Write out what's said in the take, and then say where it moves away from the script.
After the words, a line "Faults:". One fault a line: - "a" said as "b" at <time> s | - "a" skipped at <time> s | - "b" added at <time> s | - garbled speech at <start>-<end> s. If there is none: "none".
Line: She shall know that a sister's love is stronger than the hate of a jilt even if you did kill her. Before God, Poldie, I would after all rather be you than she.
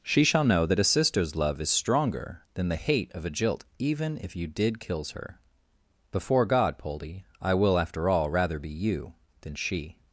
She shall know that a sister's love is stronger than the hate of a jilt even if you did kills her. Before God, Poldie, I will after all rather be you than she.
Faults:
- "kill" said as "kills" at 4.8 s
- "would" said as "will" at 7.5 s